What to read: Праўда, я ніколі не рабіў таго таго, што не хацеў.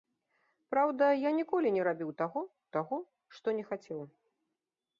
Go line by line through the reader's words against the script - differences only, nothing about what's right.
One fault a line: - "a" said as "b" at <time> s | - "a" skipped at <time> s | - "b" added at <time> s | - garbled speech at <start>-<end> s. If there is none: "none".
none